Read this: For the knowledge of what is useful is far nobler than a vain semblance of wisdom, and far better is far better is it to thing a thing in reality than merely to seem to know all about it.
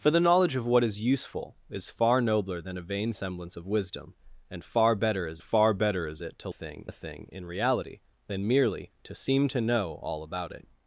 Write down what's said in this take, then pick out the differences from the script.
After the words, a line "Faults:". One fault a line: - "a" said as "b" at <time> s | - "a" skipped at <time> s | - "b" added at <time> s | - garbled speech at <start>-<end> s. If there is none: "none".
For the knowledge of what is useful is far nobler than a vain semblance of wisdom, and far better is far better is it to thing a thing in reality than merely to seem to know all about it.
Faults:
none